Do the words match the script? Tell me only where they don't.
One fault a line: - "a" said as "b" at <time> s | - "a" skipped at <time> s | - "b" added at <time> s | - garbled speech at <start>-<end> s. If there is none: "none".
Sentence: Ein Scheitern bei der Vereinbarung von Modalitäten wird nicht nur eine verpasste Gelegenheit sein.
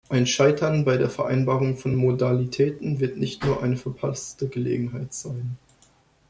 none